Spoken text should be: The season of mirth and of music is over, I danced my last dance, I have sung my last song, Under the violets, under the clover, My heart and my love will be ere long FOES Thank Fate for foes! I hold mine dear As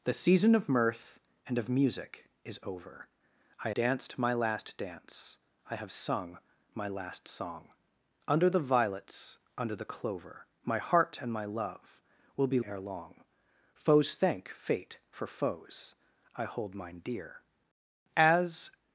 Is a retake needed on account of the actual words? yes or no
no